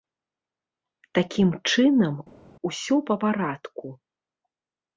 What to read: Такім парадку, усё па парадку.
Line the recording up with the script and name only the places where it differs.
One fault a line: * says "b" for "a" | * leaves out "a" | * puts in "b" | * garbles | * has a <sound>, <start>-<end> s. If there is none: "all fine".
* says "чынам" for "парадку"